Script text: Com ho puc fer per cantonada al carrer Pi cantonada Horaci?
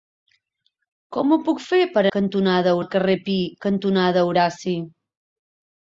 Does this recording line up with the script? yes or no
yes